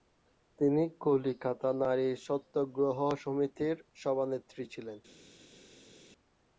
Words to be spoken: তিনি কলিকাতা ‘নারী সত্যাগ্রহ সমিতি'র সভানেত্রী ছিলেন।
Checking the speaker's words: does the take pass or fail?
pass